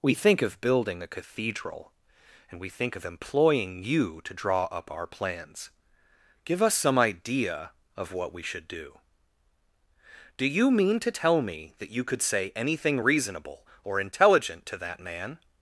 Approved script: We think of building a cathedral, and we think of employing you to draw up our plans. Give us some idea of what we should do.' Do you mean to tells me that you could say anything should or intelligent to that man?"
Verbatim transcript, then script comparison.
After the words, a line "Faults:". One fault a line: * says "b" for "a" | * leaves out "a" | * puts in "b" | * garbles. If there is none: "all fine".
We think of building a cathedral, and we think of employing you to draw up our plans. Give us some idea of what we should do.' Do you mean to tell me that you could say anything reasonable or intelligent to that man?"
Faults:
* says "tell" for "tells"
* says "reasonable" for "should"